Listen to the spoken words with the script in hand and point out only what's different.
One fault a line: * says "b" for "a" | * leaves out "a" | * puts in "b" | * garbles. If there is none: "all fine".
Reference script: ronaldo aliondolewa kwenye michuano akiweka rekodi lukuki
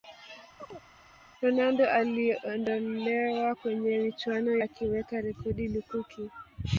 all fine